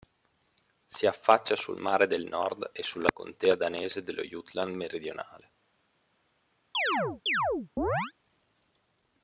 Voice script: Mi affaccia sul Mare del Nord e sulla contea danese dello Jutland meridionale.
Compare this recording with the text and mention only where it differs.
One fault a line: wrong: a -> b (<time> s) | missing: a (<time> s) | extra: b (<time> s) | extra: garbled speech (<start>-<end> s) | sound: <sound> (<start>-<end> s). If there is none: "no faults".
wrong: Mi -> Si (0.9 s)
sound: chirp (6.7-8.1 s)